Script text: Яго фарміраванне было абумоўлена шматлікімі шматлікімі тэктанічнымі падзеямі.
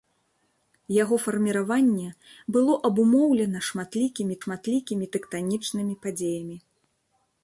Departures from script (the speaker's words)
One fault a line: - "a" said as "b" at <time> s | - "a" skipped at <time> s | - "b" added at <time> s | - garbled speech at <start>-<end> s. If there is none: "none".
none